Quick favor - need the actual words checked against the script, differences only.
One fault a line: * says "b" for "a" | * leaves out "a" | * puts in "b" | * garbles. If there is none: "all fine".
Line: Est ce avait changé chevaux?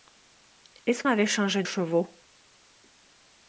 all fine